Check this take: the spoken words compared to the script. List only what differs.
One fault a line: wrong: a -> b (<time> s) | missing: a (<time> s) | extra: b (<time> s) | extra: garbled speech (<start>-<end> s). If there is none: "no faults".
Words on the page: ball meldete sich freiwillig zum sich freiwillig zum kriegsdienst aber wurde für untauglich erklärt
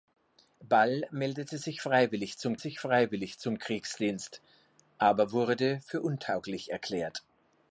no faults